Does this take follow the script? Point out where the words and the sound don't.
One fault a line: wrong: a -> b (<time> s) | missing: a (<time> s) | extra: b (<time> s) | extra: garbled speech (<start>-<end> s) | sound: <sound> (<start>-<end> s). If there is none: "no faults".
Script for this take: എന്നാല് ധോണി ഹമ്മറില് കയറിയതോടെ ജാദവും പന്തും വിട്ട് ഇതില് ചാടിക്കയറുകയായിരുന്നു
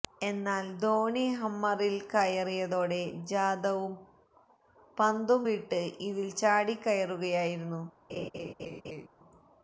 sound: laugh (8.1-9.1 s)